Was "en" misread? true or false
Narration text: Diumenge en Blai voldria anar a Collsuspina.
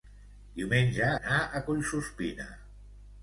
true